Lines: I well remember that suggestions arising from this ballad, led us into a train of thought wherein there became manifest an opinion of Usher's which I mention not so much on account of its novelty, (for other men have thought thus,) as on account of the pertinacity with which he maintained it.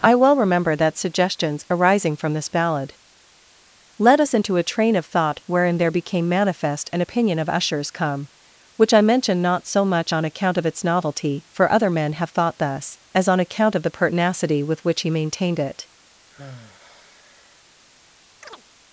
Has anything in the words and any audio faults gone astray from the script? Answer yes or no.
yes